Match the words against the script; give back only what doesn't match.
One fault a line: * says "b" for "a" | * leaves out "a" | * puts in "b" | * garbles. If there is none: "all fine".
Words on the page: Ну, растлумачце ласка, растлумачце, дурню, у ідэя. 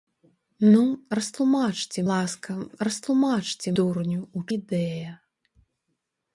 all fine